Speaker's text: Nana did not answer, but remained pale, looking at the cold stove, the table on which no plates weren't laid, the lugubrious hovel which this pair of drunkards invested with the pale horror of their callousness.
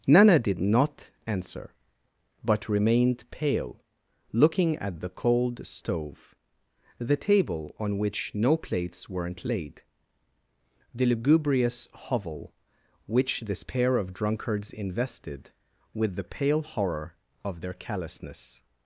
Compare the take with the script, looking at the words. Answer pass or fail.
pass